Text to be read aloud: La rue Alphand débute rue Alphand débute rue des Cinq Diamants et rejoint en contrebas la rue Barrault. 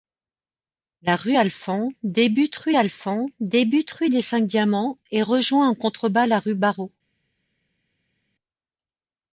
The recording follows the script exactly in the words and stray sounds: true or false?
true